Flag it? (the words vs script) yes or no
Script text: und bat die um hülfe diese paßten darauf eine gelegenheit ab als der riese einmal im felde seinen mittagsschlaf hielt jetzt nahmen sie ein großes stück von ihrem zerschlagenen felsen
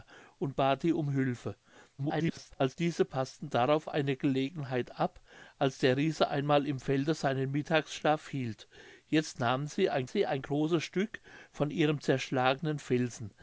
yes